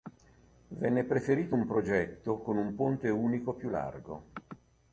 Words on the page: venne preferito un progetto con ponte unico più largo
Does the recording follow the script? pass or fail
fail